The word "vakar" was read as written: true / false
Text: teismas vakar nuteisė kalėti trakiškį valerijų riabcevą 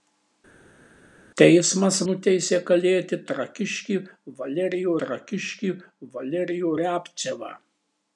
false